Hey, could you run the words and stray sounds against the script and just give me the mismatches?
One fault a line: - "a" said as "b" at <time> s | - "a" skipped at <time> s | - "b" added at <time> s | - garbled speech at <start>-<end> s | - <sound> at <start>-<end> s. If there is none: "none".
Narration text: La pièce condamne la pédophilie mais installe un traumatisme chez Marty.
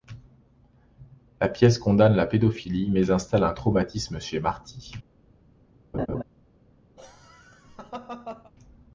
- laugh at 5.9-6.2 s
- laugh at 7.0-8.5 s